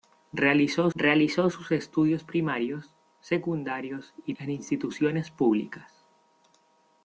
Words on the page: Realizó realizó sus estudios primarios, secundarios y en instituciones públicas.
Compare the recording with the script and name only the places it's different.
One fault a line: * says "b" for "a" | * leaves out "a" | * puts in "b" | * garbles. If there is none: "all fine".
all fine